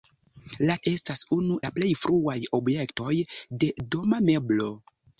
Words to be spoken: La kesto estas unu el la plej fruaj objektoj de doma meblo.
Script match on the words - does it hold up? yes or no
no